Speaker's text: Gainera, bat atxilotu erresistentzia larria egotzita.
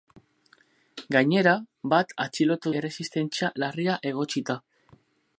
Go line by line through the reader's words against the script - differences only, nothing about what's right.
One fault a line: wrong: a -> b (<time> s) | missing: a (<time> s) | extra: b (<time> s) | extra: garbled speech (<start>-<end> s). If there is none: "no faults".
no faults